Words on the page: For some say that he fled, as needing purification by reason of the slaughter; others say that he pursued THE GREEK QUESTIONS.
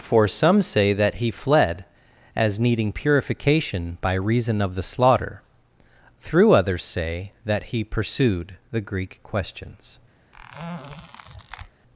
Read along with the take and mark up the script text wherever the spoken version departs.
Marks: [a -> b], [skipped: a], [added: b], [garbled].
For some say that he fled, as needing purification by reason of the slaughter; [added: through] others say that he pursued THE GREEK QUESTIONS.